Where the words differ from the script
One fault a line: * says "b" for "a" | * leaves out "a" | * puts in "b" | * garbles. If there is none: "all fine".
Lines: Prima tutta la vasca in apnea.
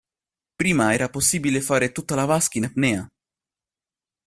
* puts in "era possibile fare"